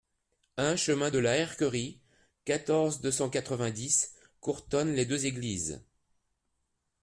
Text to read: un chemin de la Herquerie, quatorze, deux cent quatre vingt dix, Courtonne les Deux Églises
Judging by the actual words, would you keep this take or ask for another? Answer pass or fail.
pass